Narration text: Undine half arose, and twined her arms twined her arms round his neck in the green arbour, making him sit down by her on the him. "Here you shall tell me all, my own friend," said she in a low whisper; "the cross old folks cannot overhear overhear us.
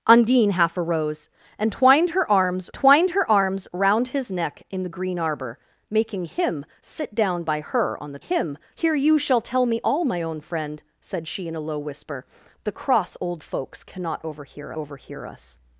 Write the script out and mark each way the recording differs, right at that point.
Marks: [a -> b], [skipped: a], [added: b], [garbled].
Undine half arose, and twined her arms twined her arms round his neck in the green arbour, making him sit down by her on the him. "Here you shall tell me all, my own friend," said she in a low whisper; "the cross old folks cannot overhear overhear us.